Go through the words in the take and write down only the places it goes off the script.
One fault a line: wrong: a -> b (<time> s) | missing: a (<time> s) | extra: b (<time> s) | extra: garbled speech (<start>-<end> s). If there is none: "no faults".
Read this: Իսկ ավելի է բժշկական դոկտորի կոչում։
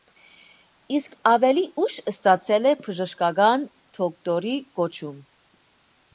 extra: ուշ ստացել (1.8 s)